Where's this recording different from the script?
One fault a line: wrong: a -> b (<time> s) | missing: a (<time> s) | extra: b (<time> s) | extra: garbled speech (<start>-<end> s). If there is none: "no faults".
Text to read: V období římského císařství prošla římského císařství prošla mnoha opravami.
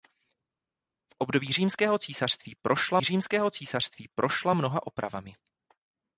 no faults